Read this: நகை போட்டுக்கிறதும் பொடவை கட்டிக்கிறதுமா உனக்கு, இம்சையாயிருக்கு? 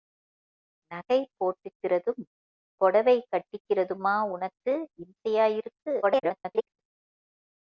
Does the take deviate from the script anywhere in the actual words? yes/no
yes